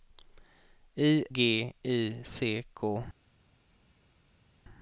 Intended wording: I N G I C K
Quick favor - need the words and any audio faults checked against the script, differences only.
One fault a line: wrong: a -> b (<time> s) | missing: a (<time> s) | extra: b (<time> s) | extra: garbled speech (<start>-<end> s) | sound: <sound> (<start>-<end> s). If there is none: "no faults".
missing: N (1.2 s)